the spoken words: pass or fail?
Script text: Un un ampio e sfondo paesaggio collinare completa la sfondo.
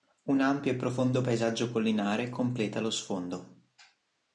fail